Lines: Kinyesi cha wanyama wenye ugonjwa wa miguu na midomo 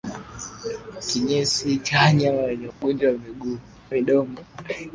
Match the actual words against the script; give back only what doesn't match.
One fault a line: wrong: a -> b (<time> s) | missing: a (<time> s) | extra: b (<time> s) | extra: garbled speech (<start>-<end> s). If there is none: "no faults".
missing: na (3.6 s)